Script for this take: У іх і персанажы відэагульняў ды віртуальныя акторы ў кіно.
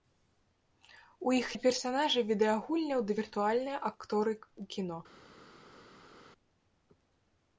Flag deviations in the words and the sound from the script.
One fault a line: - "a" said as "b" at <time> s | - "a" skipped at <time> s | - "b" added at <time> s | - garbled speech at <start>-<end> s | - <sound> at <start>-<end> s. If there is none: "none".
none